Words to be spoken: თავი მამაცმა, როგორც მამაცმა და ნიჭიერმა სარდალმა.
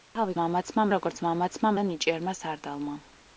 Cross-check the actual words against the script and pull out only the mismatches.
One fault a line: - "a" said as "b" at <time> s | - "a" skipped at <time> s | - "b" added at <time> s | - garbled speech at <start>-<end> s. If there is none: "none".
none